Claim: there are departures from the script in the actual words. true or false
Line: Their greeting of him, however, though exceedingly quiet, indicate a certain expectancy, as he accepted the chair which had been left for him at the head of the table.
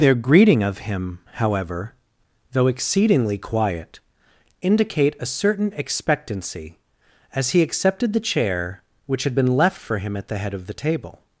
false